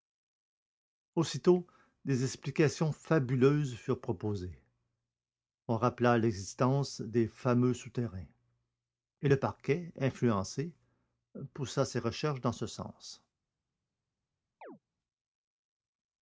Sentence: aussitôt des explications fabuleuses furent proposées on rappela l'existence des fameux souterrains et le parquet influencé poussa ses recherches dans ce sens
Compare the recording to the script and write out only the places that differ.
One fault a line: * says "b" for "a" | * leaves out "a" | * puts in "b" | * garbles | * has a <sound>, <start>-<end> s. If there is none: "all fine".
* has a chirp, 14.6-14.8 s